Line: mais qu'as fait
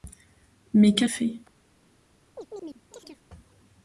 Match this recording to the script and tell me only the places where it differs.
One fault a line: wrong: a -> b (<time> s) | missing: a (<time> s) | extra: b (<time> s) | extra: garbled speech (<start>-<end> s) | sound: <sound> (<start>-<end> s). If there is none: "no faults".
sound: chirp (2.4-3.2 s)